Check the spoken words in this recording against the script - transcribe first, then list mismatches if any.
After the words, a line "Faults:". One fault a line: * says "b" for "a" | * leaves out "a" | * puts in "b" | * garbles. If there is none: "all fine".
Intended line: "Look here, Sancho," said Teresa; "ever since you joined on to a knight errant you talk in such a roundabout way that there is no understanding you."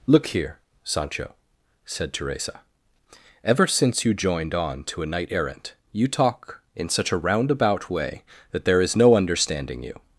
"Look here, Sancho," said Teresa; "ever since you joined on to a knight errant you talk in such a roundabout way that there is no understanding you."
Faults:
all fine